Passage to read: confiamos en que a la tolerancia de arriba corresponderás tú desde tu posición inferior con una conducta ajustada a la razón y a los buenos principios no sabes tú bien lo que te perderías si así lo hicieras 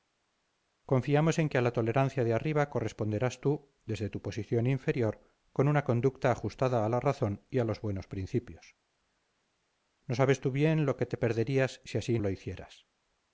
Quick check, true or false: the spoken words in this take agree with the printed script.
true